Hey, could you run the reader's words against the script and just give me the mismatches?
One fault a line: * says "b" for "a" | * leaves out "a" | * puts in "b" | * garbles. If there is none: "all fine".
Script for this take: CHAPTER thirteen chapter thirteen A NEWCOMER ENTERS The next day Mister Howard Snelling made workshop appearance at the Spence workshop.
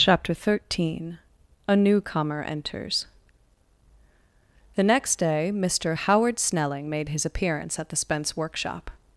* leaves out "chapter thirteen"
* says "his" for "workshop"